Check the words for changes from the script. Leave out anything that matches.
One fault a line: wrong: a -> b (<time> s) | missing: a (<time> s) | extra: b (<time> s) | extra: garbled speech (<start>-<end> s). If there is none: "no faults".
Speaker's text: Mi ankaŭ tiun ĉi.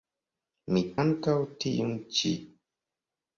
no faults